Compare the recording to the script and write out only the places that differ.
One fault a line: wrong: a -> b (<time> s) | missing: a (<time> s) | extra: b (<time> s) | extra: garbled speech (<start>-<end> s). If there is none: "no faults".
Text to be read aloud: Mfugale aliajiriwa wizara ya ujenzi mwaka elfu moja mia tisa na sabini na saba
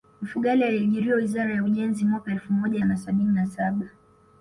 missing: mia tisa (2.8 s)